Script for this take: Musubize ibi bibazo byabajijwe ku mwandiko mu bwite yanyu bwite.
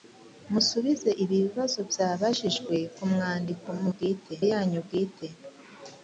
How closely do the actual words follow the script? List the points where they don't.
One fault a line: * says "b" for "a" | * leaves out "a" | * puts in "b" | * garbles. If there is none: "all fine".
all fine